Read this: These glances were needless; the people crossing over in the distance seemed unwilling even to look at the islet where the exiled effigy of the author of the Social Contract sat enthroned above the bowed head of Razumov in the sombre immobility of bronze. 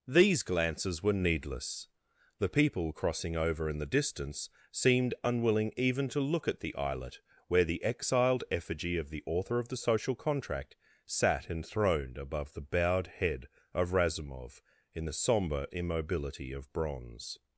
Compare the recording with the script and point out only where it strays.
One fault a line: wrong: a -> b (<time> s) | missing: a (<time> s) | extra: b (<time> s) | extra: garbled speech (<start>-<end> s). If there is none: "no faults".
no faults